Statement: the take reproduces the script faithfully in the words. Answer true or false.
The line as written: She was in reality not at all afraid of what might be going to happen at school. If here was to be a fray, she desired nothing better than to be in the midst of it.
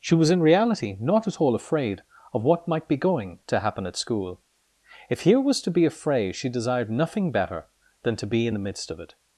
true